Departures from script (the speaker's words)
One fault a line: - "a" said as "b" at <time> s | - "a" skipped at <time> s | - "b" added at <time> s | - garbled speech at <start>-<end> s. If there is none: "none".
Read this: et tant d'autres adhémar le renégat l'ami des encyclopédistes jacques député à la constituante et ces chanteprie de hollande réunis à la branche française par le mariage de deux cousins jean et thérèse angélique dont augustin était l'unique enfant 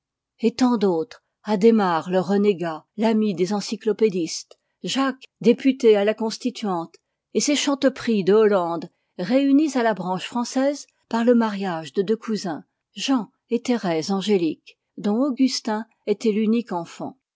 none